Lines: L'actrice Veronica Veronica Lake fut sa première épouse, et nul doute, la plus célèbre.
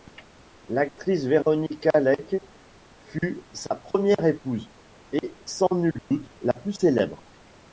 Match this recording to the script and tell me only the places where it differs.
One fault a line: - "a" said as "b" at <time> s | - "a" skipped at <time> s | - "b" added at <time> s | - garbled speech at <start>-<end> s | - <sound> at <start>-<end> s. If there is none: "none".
- "Veronica" skipped at 1.9 s
- "sans" added at 5.4 s
- dropout at 6.0-6.1 s